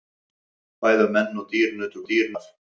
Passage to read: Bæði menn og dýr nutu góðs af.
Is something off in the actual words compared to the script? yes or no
yes